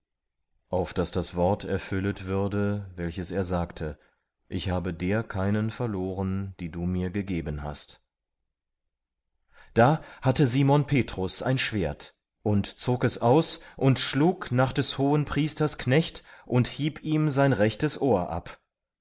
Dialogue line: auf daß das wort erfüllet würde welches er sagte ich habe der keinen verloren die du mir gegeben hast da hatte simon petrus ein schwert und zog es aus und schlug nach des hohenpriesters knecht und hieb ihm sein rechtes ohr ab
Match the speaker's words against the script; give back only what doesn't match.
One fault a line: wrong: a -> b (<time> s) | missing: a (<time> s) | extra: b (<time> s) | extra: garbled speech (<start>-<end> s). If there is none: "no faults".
no faults